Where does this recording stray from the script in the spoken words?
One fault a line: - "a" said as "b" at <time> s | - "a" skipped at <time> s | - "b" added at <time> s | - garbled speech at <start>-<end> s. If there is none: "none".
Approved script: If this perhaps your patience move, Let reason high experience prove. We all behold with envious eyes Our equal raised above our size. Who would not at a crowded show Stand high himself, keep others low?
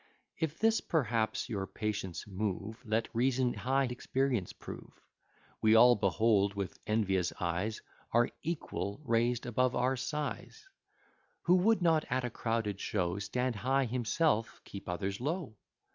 none